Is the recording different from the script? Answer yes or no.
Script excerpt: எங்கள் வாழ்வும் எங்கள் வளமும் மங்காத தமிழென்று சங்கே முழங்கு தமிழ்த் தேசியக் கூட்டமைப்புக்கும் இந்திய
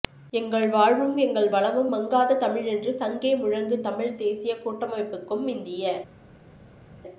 no